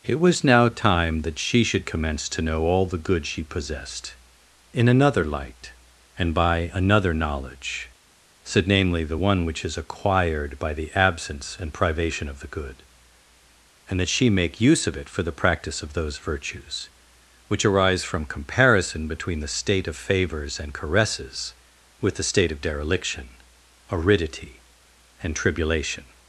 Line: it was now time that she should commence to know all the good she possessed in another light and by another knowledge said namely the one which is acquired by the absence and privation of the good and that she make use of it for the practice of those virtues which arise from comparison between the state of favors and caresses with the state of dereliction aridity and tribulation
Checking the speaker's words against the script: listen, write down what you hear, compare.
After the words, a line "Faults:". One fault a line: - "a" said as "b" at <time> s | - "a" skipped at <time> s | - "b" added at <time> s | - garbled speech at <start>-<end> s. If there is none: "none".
it was now time that she should commence to know all the good she possessed in another light and by another knowledge said namely the one which is acquired by the absence and privation of the good and that she make use of it for the practice of those virtues which arise from comparison between the state of favors and caresses with the state of dereliction aridity and tribulation
Faults:
none